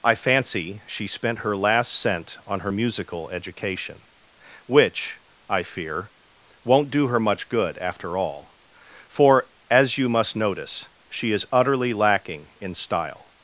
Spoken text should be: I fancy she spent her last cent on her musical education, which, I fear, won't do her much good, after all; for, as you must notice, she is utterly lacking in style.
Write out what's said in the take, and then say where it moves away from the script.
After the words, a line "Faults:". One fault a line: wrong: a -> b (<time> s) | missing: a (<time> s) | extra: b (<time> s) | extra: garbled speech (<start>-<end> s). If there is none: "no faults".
I fancy she spent her last cent on her musical education, which, I fear, won't do her much good, after all; for, as you must notice, she is utterly lacking in style.
Faults:
no faults